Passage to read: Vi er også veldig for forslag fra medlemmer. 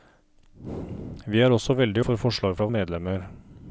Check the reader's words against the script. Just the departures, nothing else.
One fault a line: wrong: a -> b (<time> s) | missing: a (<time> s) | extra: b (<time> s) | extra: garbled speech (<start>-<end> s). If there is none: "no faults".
no faults